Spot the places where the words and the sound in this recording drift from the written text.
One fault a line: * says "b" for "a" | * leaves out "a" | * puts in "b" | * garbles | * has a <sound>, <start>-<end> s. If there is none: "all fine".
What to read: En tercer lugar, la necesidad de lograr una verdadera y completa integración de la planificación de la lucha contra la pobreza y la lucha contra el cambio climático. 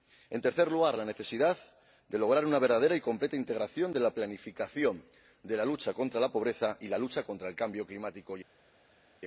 all fine